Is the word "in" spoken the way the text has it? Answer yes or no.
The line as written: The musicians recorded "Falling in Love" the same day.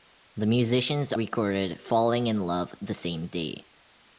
yes